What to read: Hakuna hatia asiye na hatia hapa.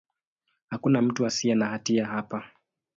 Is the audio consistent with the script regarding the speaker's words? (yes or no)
no